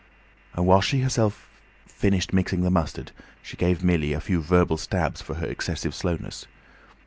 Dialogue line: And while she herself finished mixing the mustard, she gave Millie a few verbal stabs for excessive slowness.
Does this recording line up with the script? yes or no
no